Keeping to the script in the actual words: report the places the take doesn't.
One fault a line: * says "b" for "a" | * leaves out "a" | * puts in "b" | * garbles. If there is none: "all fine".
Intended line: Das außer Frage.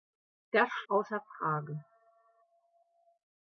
all fine